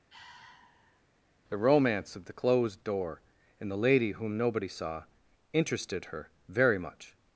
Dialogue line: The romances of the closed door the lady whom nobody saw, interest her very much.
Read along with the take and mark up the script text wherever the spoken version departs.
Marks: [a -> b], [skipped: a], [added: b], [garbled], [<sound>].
[sigh] The [romances -> romance] of the closed door [added: and] the lady whom nobody saw, [interest -> interested] her very much.